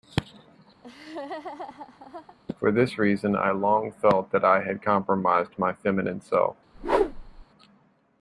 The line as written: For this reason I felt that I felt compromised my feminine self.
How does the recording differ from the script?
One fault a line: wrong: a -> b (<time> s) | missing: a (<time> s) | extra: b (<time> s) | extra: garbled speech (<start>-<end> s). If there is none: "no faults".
extra: long (3.5 s)
wrong: felt -> had (4.6 s)